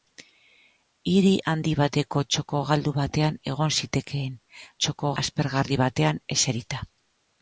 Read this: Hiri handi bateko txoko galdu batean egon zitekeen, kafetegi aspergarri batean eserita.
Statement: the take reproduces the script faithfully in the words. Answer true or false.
false